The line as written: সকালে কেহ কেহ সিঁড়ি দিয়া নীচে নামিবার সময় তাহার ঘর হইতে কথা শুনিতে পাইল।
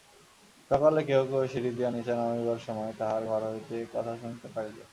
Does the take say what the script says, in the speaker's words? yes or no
yes